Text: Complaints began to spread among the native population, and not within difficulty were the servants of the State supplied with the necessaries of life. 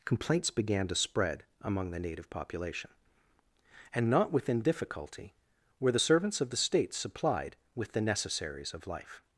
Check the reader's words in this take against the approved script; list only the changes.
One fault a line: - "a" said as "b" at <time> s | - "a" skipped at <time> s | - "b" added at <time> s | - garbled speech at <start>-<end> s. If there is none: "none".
none